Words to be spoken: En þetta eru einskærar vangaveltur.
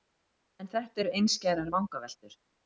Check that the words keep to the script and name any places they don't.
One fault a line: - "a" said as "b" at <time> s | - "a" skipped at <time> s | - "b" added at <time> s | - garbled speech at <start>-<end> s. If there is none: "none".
none